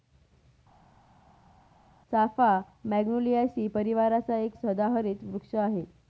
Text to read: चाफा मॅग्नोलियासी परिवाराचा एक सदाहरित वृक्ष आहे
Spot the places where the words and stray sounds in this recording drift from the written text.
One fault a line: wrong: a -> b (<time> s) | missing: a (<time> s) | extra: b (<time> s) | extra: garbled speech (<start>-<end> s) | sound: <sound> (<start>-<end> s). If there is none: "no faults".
no faults